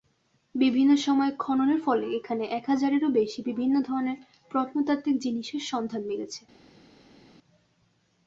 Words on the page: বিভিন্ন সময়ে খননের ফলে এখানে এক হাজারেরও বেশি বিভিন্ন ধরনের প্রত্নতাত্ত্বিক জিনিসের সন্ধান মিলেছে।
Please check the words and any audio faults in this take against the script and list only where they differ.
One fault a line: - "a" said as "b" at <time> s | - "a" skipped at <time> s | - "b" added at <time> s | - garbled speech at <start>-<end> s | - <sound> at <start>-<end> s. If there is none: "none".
none